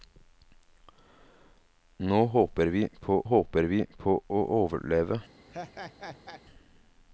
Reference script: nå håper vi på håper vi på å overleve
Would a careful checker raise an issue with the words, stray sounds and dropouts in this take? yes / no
yes